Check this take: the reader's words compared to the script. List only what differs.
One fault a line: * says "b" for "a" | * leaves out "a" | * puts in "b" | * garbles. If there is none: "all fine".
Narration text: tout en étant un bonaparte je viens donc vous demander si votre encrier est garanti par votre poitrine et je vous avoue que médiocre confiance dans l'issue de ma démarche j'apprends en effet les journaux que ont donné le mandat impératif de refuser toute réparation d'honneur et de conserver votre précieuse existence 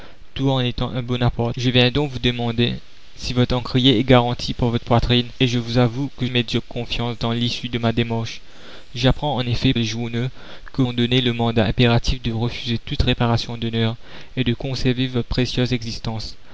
all fine